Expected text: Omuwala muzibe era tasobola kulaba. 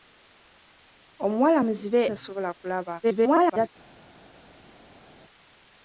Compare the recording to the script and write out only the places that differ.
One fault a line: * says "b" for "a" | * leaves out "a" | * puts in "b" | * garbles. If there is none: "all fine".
* leaves out "era"
* garbles